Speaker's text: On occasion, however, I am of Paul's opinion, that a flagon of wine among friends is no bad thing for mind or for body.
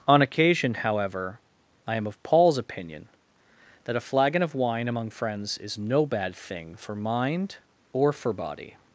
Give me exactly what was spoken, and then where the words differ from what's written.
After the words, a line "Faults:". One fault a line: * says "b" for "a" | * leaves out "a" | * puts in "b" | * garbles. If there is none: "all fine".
On occasion, however, I am of Paul's opinion, that a flagon of wine among friends is no bad thing for mind or for body.
Faults:
all fine